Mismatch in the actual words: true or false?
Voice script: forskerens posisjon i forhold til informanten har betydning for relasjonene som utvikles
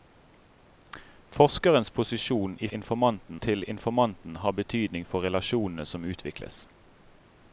true